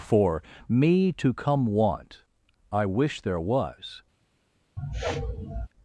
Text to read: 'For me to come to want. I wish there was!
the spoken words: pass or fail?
fail